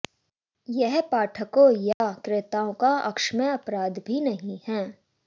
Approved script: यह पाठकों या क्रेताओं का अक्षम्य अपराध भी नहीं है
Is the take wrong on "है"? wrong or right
right